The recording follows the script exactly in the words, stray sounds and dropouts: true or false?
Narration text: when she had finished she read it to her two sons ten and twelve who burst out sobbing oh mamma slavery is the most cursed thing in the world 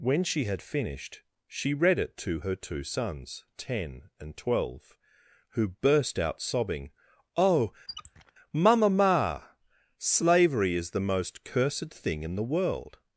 false